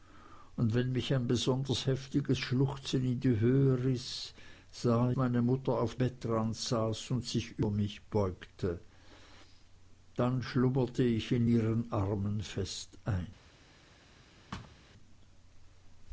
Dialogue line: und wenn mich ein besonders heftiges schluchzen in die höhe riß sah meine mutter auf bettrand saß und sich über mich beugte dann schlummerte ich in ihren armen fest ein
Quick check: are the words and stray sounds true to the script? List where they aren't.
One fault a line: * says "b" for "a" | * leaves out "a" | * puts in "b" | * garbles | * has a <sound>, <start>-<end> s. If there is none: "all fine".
* has a thud, 14.5-14.8 s